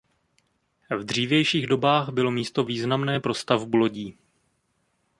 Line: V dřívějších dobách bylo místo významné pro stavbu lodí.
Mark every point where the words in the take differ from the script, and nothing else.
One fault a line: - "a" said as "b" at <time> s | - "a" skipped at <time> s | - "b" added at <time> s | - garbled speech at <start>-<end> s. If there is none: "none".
none